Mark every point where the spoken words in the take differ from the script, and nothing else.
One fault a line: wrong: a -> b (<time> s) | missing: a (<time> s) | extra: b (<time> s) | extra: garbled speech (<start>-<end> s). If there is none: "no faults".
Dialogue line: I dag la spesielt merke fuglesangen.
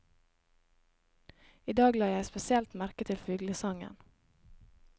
extra: jeg (2.1 s)
extra: til (3.1 s)